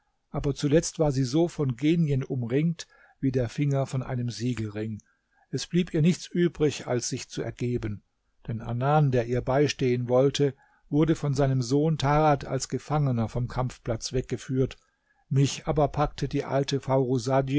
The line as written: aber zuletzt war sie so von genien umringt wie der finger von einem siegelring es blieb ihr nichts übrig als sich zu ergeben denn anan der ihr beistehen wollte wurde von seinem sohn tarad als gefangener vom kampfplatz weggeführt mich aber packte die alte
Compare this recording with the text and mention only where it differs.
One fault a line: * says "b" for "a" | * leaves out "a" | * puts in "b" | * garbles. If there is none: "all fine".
all fine